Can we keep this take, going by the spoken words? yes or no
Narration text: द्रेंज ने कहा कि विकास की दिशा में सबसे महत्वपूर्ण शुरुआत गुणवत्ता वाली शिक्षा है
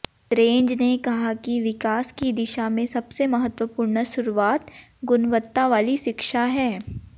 yes